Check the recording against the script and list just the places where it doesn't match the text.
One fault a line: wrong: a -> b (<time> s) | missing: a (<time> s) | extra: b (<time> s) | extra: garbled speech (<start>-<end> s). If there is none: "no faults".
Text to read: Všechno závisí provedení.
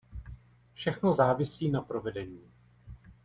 extra: na (1.7 s)